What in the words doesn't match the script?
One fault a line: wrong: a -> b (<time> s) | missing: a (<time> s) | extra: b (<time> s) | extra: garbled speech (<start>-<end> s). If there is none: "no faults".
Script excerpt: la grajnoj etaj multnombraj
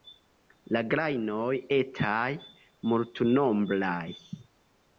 no faults